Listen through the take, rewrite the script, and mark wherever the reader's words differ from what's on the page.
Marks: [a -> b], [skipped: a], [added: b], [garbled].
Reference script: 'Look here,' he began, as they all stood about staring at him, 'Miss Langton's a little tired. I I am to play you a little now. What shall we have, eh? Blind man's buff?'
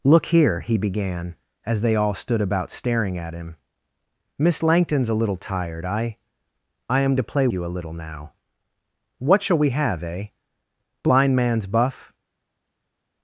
'Look here,' he began, as they all stood about staring at him, 'Miss Langton's a little tired. I I am to play you a little now. What shall we have, eh? Blind man's buff?'